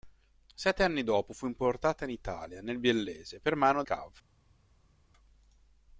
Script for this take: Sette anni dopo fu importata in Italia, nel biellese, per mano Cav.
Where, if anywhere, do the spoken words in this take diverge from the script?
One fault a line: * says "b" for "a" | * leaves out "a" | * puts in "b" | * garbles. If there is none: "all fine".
all fine